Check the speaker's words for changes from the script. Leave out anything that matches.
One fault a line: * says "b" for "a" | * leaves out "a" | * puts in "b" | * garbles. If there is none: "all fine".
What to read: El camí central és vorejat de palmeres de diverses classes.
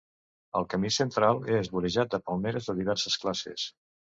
all fine